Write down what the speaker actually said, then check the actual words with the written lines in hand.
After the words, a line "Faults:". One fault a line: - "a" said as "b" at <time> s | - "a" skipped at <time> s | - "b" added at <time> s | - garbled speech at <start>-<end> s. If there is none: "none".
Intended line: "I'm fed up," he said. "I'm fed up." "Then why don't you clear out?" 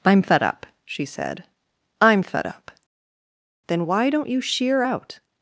"I'm fed up," she said. "I'm fed up." "Then why don't you sheer out?"
Faults:
- "he" said as "she" at 0.8 s
- "clear" said as "sheer" at 4.4 s